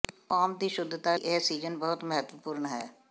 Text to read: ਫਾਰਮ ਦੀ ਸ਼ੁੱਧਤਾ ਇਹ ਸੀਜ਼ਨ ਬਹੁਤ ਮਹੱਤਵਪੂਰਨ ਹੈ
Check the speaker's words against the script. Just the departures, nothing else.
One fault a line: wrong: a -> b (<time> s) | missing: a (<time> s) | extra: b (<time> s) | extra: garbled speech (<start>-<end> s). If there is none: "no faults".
no faults